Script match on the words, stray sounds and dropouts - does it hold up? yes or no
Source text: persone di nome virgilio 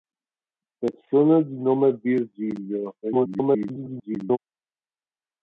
no